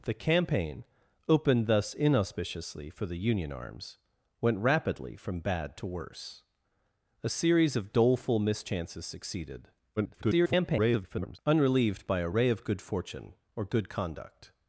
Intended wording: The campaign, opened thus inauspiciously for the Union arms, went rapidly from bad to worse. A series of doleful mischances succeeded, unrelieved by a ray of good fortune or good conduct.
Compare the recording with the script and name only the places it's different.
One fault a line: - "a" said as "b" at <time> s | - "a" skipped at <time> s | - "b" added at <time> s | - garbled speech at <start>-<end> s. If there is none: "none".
- garbled speech at 10.0-11.4 s